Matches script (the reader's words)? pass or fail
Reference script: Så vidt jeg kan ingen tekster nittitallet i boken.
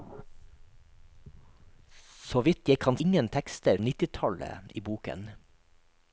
pass